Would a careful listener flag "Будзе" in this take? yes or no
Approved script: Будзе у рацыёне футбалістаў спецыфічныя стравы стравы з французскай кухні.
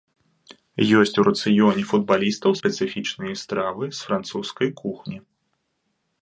yes